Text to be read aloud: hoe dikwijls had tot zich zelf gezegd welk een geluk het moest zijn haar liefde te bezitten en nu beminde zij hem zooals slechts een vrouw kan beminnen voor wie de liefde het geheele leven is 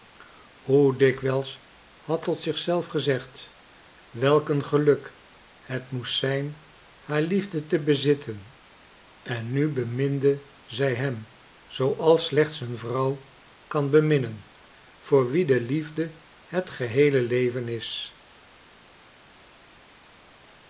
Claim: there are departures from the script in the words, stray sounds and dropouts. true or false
false